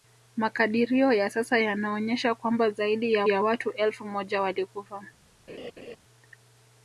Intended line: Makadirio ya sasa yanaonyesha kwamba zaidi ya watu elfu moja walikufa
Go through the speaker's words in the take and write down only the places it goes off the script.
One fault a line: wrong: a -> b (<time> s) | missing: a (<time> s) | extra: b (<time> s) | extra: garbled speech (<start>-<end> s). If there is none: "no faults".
extra: ya (3.3 s)